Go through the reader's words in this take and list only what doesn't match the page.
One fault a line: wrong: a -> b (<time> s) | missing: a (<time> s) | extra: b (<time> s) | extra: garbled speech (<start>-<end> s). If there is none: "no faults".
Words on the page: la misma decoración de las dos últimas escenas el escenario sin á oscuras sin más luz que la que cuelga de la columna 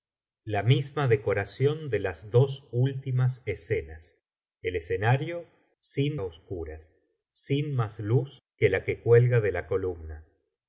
no faults